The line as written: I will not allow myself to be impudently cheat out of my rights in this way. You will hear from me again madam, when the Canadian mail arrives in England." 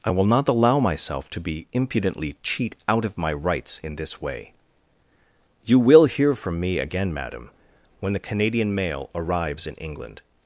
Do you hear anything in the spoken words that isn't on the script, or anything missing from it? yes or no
no